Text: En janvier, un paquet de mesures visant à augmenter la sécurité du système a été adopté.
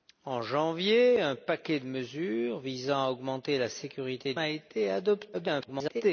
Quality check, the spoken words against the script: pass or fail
fail